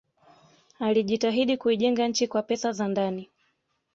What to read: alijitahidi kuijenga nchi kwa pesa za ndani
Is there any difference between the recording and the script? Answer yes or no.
no